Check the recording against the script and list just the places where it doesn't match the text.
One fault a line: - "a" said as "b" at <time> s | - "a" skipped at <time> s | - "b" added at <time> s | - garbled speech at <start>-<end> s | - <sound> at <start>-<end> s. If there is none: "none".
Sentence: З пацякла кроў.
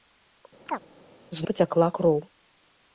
- chirp at 0.7-0.8 s